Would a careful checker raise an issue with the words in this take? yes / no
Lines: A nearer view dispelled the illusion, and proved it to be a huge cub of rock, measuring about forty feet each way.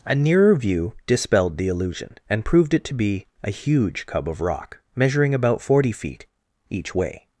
no